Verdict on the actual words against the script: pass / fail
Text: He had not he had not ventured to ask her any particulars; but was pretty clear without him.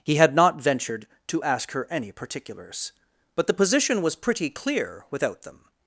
fail